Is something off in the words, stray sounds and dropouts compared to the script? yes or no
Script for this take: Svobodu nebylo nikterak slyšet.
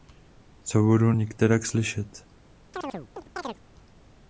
yes